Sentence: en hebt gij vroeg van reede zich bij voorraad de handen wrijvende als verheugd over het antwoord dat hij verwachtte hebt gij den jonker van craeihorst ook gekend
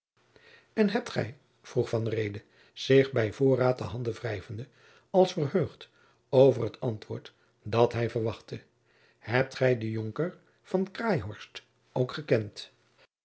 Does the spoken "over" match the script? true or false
true